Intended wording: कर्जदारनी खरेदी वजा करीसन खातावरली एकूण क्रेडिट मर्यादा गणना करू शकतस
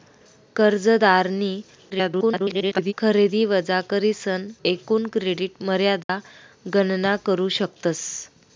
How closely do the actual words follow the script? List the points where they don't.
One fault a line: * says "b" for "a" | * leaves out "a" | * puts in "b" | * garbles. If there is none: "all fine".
* garbles
* leaves out "खातावरली"